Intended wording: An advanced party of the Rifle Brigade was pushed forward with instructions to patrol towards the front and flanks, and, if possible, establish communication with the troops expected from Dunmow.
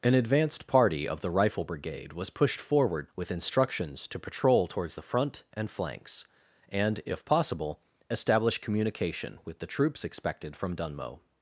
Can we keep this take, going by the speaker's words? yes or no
yes